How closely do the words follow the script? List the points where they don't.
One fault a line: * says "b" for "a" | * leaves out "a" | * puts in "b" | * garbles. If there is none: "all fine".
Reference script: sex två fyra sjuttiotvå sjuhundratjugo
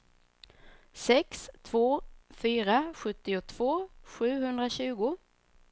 all fine